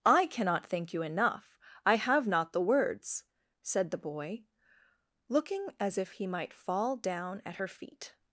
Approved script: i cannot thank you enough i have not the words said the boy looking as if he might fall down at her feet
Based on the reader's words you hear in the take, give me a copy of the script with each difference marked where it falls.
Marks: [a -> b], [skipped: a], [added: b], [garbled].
i cannot thank you enough i have not the words said the boy looking as if he might fall down at her feet